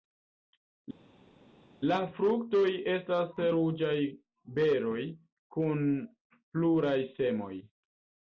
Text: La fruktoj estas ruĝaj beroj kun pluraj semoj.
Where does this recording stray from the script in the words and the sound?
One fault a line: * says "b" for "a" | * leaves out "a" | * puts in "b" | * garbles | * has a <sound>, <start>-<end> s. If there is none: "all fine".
all fine